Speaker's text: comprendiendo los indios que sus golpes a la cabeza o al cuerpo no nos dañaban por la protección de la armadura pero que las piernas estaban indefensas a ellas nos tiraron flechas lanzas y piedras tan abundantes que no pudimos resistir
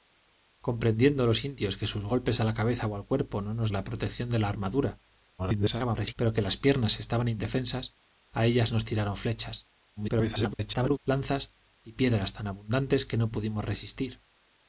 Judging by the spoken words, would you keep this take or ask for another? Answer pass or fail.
fail